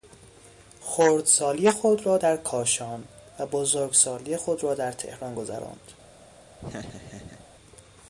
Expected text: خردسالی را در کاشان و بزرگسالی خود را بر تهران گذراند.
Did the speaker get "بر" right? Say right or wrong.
wrong